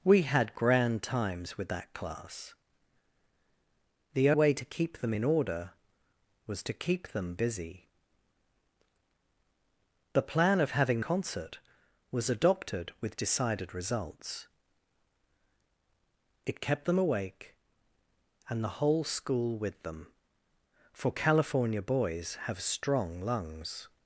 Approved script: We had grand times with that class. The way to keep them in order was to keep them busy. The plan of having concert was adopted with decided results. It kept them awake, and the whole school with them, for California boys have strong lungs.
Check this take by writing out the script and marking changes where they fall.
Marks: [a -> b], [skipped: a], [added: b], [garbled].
We had grand times with that class. The way to keep them in order was to keep them busy. The plan of having concert was adopted with decided results. It kept them awake, and the whole school with them, for California boys have strong lungs.